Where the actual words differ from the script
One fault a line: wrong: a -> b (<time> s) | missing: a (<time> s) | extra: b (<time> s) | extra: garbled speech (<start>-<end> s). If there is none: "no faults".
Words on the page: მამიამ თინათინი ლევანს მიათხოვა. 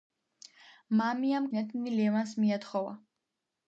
no faults